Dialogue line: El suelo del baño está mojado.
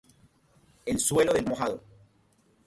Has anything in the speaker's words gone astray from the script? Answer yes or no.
yes